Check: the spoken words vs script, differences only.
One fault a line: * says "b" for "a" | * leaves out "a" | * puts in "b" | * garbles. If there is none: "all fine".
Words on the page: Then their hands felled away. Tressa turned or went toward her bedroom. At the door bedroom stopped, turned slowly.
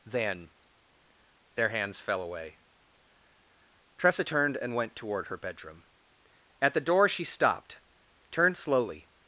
* says "fell" for "felled"
* says "and" for "or"
* says "she" for "bedroom"